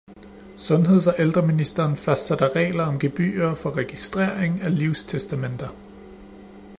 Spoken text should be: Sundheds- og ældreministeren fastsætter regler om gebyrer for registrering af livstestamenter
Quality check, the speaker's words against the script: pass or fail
pass